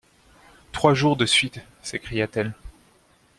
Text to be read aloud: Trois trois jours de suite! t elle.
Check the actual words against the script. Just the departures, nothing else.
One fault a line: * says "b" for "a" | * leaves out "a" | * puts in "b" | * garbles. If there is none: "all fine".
* leaves out "trois"
* puts in "s'écria"